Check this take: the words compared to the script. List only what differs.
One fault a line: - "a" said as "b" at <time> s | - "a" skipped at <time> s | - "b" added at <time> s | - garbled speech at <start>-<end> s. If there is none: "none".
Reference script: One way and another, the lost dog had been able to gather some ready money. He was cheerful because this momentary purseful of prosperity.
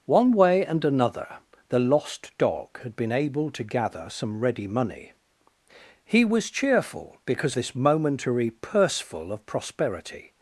none